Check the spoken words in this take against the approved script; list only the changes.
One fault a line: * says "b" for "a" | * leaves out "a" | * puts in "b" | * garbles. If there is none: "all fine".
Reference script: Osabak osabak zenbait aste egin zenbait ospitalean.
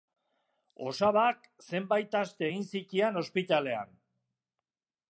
* leaves out "osabak"
* says "zitian" for "zenbait"